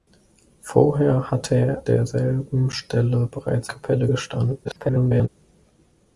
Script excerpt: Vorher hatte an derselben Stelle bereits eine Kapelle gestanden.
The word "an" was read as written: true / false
false